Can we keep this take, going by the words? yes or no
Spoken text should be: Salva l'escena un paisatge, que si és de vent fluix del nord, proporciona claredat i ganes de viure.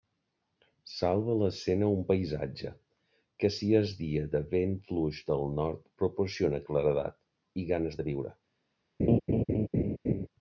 no